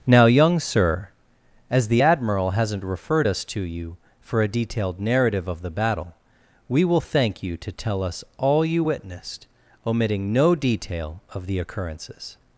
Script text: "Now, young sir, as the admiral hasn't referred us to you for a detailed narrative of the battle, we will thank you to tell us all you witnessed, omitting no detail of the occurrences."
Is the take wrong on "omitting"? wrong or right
right